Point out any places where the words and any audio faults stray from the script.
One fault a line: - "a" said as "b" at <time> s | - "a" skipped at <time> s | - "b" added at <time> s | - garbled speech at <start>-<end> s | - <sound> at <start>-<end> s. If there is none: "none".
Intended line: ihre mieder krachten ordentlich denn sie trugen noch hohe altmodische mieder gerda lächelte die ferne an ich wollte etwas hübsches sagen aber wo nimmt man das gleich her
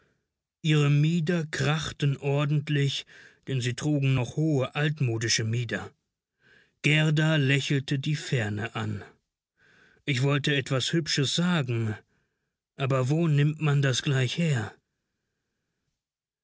none